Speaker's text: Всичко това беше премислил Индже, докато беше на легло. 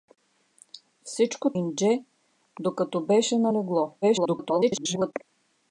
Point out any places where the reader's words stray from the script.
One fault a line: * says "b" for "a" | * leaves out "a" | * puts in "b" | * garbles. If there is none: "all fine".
* leaves out "това беше премислил"
* garbles